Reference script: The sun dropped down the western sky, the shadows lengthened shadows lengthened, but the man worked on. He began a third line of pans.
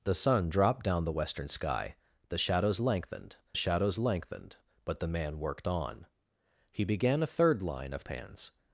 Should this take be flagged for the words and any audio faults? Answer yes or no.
no